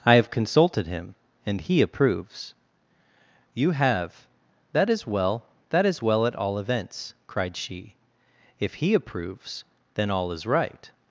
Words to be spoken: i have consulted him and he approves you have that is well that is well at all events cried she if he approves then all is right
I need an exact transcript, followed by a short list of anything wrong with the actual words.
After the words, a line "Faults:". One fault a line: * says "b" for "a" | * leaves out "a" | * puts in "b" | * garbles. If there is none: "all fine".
i have consulted him and he approves you have that is well that is well at all events cried she if he approves then all is right
Faults:
all fine